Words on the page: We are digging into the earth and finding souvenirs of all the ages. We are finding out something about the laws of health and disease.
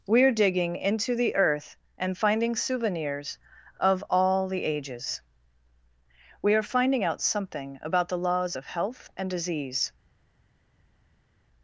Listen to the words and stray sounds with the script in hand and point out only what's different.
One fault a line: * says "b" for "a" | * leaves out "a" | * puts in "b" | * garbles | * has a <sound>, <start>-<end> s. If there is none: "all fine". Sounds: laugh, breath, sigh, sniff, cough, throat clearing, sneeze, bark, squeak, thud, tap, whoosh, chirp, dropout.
all fine